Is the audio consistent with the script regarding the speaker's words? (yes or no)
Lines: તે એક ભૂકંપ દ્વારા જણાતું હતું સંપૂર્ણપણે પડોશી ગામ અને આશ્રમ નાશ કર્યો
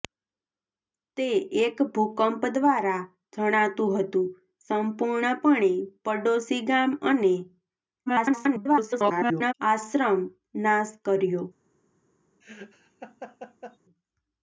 no